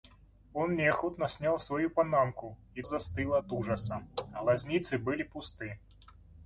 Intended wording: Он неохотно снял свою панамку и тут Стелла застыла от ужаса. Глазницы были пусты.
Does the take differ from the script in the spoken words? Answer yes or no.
yes